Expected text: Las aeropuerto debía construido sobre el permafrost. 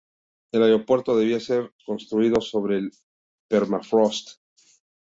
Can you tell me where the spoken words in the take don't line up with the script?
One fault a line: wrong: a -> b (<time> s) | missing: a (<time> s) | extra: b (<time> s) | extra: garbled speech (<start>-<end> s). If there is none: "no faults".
wrong: Las -> El (0.5 s)
extra: ser (1.4 s)